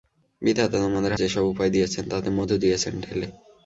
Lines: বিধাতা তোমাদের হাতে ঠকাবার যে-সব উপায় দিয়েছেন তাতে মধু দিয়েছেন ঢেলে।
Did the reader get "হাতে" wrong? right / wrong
wrong